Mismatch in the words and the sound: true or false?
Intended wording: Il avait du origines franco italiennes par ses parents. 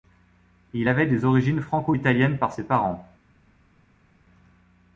true